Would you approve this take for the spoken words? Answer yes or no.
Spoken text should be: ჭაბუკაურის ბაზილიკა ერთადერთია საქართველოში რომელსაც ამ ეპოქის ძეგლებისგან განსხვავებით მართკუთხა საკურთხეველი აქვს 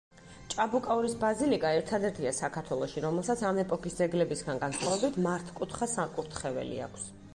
yes